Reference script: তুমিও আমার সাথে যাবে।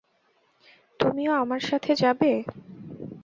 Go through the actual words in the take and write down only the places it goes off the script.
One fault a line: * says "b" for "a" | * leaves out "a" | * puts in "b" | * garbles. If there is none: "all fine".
all fine